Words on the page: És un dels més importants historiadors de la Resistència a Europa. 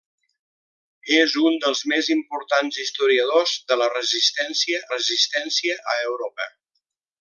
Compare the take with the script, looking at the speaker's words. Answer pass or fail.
fail